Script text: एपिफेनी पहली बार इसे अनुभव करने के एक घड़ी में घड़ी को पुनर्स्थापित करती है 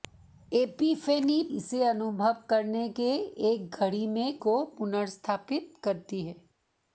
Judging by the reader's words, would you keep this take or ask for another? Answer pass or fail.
fail